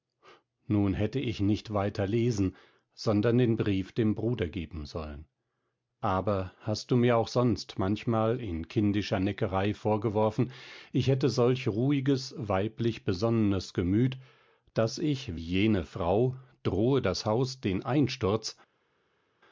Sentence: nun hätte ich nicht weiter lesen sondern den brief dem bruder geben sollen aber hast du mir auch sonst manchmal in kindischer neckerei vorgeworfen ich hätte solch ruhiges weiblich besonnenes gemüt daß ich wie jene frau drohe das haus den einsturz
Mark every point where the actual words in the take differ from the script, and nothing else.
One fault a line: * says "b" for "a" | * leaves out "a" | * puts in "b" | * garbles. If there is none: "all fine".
* leaves out "wie"